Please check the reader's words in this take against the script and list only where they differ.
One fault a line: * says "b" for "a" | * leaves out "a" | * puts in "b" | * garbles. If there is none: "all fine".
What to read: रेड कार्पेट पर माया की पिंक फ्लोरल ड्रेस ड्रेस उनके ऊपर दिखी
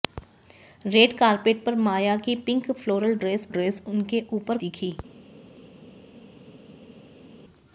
all fine